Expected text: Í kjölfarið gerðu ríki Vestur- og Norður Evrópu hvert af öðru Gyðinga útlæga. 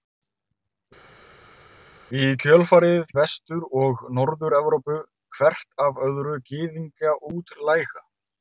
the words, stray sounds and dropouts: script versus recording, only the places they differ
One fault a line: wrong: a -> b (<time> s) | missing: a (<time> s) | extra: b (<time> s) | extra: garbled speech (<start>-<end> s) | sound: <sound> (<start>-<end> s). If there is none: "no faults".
missing: gerðu ríki (3.1 s)